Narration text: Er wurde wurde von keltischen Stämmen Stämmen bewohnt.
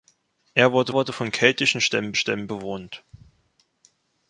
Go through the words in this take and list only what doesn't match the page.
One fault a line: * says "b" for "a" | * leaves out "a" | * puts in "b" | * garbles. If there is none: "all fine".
all fine